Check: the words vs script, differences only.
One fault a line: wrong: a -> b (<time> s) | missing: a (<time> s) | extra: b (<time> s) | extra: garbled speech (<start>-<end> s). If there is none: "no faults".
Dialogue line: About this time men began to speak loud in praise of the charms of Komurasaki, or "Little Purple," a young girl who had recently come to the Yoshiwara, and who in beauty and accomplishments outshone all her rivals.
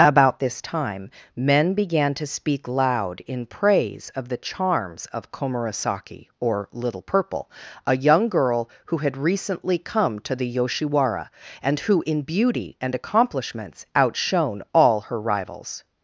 no faults